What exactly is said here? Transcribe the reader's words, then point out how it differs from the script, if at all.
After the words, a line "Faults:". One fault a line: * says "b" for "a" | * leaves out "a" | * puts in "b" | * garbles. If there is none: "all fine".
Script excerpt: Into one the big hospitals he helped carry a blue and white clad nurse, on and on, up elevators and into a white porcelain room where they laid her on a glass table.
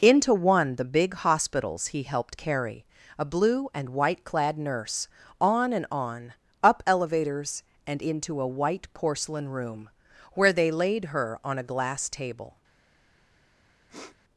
Into one the big hospitals he helped carry a blue and white clad nurse, on and on, up elevators and into a white porcelain room where they laid her on a glass table.
Faults:
all fine